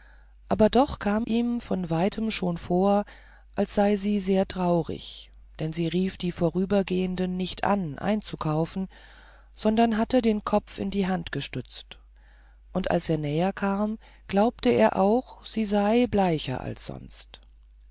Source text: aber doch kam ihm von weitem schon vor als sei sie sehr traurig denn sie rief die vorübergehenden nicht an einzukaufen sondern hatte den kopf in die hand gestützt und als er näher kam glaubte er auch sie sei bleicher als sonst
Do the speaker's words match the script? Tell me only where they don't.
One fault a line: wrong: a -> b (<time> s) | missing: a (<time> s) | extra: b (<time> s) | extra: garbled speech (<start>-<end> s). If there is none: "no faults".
no faults